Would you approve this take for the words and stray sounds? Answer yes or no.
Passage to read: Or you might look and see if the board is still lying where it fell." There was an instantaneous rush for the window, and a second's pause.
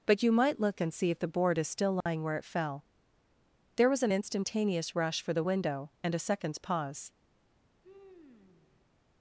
no